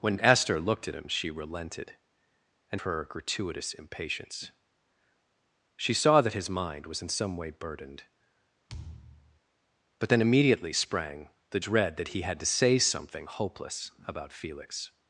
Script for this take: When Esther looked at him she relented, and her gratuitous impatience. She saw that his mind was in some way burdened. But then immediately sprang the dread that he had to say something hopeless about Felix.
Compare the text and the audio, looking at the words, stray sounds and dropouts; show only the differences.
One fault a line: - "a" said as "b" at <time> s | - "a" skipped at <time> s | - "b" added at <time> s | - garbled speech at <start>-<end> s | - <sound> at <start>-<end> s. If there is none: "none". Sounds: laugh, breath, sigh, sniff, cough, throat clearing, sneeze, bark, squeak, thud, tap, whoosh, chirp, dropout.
- thud at 8.7-9.4 s